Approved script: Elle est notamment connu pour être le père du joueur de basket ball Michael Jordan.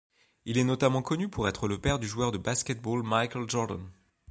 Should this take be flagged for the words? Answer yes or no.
yes